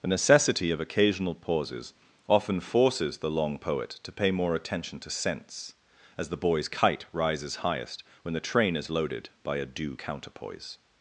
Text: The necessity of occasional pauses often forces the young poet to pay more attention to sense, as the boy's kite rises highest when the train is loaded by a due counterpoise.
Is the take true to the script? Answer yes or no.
no